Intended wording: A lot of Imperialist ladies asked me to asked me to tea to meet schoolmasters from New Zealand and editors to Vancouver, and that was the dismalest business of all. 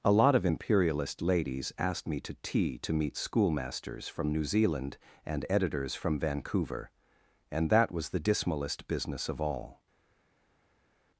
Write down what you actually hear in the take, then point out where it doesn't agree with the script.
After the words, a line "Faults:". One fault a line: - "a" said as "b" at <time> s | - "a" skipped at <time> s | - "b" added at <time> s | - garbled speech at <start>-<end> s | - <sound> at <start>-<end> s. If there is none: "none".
A lot of Imperialist ladies asked me to tea to meet schoolmasters from New Zealand and editors from Vancouver, and that was the dismalest business of all.
Faults:
- "asked me to" skipped at 2.4 s
- "to" said as "from" at 5.9 s